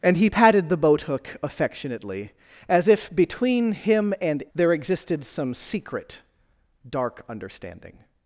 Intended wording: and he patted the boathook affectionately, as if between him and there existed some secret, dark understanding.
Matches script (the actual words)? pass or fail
pass